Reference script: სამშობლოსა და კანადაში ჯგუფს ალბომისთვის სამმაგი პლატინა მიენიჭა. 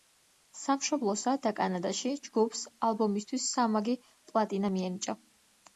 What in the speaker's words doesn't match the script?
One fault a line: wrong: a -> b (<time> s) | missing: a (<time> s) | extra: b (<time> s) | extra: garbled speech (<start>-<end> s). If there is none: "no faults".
no faults